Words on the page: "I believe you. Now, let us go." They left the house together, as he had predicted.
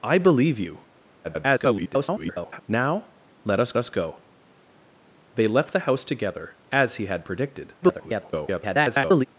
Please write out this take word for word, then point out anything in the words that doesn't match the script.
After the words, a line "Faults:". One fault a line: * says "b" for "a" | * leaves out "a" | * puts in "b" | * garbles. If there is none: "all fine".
"I believe you. [garbled] Now, let us us go." They left the house together, as he had predicted. [garbled]
Faults:
* garbles
* puts in "us"
* garbles